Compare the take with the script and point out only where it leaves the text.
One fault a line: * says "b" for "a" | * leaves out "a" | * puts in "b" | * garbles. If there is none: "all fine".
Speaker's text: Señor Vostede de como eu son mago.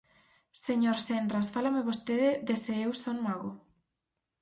* puts in "Senras fálame"
* says "se" for "como"